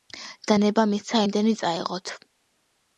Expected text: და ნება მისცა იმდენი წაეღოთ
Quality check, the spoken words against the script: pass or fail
pass